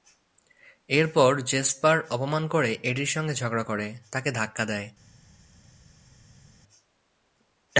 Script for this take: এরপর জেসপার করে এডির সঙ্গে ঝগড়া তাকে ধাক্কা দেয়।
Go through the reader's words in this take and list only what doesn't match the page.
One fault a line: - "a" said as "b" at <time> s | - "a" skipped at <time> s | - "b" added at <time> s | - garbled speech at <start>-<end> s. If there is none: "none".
- "অপমান" added at 2.1 s
- "করে" added at 3.6 s